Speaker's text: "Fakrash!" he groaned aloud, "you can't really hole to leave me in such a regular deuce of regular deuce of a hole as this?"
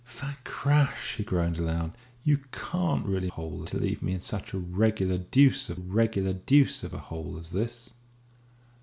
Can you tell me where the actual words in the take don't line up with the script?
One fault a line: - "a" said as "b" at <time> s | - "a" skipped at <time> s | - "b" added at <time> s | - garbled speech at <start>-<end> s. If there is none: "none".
none